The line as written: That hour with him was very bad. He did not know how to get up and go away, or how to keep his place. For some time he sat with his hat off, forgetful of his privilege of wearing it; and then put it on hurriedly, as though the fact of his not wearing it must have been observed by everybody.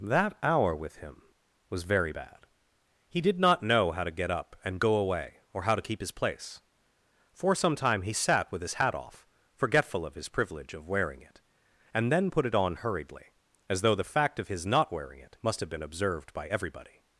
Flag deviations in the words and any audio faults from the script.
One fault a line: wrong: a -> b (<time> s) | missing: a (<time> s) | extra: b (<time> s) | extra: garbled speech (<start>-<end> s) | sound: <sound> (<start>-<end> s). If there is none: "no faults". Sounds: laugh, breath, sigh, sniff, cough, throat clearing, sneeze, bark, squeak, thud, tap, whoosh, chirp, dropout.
no faults